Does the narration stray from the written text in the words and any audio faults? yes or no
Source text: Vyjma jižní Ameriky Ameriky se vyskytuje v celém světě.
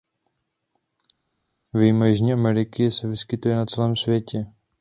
yes